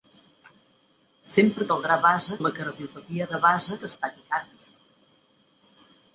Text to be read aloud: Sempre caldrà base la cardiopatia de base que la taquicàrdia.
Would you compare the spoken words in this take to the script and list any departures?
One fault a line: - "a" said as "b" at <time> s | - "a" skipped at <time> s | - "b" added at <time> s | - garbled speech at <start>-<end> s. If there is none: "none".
none